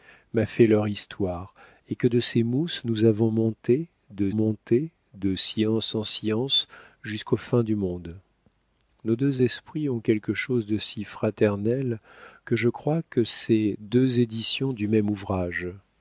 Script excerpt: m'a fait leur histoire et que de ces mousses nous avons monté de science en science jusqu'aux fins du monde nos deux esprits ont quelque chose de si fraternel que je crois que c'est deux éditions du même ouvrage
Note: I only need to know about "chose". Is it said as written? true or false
true